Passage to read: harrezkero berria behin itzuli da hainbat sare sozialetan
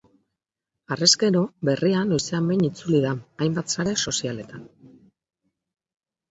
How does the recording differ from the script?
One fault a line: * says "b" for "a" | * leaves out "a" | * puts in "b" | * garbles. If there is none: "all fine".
* puts in "noizean"